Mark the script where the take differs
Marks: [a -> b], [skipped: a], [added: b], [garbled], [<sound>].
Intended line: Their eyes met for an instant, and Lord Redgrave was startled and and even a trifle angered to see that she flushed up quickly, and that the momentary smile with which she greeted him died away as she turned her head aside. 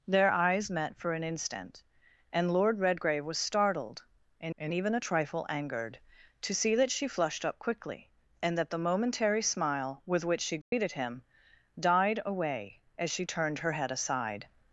Their eyes met for an instant, and Lord Redgrave was startled and and even a trifle angered to see that she flushed up quickly, and that the momentary smile with which she greeted [dropout] him died away as she turned her head aside.